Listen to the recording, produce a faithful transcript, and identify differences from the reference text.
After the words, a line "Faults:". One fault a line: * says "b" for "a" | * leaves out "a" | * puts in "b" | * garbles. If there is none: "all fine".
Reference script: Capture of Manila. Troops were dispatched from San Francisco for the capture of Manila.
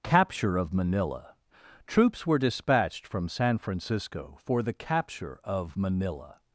Capture of Manila. Troops were dispatched from San Francisco for the capture of Manila.
Faults:
all fine